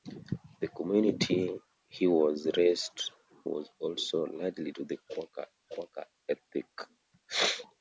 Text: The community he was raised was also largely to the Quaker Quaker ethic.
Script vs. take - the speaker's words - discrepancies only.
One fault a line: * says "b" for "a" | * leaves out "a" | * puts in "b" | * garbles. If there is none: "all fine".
all fine